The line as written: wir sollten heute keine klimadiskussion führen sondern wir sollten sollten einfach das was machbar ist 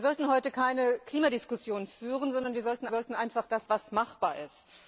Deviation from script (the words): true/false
false